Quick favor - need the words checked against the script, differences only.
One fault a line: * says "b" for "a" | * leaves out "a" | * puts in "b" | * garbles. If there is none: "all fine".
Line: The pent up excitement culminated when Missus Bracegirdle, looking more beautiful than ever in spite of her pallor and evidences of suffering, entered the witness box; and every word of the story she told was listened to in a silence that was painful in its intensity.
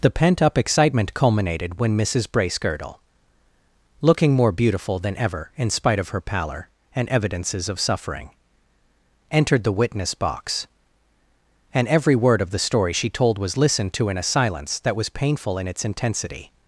all fine